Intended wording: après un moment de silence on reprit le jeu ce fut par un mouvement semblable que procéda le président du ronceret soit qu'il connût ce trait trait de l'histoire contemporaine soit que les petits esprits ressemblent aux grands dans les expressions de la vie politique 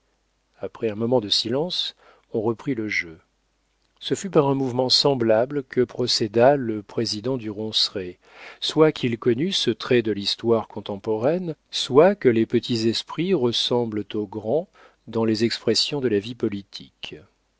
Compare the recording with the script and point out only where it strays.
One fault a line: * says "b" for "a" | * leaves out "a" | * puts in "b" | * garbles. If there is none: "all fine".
* leaves out "trait"